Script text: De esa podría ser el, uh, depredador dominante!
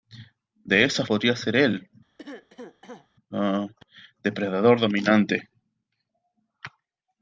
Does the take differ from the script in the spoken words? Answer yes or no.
no